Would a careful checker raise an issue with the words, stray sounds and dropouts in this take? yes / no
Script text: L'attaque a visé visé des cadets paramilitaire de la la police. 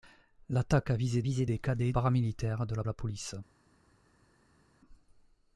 no